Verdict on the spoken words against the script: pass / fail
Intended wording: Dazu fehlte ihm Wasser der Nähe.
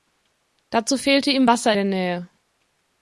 pass